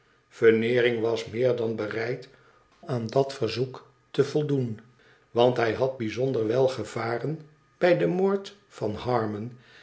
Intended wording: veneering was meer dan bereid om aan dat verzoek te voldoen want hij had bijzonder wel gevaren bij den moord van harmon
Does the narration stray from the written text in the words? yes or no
yes